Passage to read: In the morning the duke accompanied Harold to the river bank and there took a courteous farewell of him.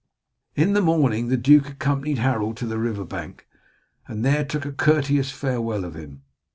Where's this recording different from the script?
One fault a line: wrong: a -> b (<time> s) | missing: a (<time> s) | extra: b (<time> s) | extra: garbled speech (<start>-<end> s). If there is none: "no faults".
no faults